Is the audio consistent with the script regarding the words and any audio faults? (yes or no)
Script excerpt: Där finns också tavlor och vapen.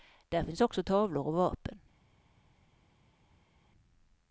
yes